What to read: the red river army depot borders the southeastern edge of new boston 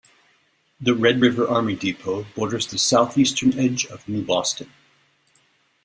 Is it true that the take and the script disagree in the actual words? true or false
false